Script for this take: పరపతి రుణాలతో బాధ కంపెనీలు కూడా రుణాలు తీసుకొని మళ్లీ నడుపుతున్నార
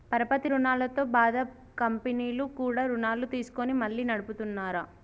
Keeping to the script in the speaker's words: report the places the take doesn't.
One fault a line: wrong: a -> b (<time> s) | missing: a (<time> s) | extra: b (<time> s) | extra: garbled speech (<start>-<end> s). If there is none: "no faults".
no faults